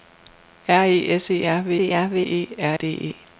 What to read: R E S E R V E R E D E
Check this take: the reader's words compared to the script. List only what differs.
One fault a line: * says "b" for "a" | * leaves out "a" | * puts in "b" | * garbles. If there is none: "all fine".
* puts in "V"
* puts in "R"